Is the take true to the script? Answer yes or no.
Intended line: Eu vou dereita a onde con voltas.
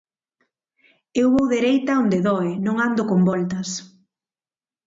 no